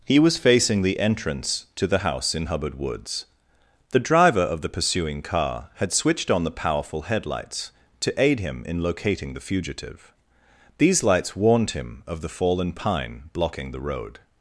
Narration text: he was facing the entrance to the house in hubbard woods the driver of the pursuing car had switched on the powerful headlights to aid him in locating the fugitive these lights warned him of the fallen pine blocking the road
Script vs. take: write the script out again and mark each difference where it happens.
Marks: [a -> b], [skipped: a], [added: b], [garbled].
he was facing the entrance to the house in hubbard woods the driver of the pursuing car had switched on the powerful headlights to aid him in locating the fugitive these lights warned him of the fallen pine blocking the road